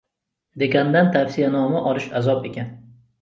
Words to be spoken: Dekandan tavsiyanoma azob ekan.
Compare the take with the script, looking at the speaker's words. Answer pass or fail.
fail